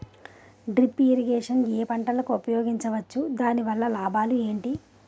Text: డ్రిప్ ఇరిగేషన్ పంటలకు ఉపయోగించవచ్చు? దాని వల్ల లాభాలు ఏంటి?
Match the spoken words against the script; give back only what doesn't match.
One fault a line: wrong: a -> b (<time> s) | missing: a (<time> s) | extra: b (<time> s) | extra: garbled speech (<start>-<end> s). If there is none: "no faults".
extra: ఏ (1.7 s)